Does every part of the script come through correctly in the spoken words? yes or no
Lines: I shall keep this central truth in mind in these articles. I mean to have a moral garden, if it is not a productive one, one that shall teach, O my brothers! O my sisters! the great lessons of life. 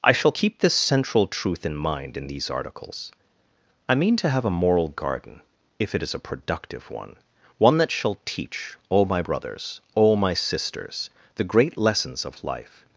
no